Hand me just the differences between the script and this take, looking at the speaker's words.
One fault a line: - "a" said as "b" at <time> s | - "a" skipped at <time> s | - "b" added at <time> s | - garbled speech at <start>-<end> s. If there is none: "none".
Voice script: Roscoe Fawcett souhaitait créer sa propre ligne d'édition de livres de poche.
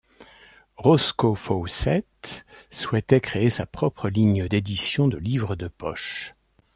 none